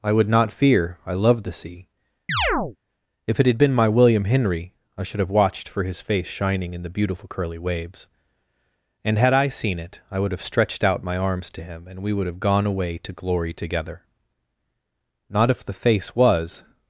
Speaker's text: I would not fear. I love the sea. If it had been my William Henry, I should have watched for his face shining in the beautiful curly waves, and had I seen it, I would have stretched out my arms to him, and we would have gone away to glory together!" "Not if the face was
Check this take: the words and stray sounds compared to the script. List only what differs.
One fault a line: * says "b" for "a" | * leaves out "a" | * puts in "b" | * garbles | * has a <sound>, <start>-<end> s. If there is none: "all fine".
* has a chirp, 2.3-2.8 s